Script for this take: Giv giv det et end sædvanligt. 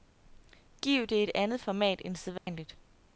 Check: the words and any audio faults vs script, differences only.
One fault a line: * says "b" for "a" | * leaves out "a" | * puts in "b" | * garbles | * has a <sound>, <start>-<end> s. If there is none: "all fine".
* leaves out "giv"
* puts in "andet format"
* has a dropout, 2.4-2.5 s